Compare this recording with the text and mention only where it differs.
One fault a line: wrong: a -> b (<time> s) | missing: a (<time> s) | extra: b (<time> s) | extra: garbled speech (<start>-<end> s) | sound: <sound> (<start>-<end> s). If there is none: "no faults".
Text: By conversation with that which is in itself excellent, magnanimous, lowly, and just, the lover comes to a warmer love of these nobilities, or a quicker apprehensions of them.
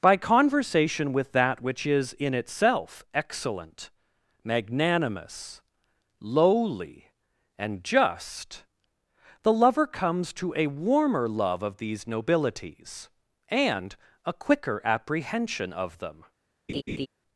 wrong: or -> and (13.5 s)
wrong: apprehensions -> apprehension (14.8 s)
sound: laugh (16.7-17.1 s)